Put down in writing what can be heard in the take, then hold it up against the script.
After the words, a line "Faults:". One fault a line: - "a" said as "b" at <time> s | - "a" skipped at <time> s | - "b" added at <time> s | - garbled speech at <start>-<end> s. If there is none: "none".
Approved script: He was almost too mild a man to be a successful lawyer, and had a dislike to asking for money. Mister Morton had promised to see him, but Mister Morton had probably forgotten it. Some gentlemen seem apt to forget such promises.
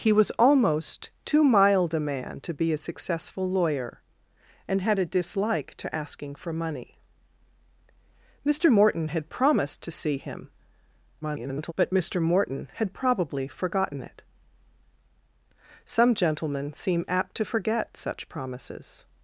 He was almost too mild a man to be a successful lawyer, and had a dislike to asking for money. Mister Morton had promised to see him, [garbled] but Mister Morton had probably forgotten it. Some gentlemen seem apt to forget such promises.
Faults:
- garbled speech at 11.2-11.7 s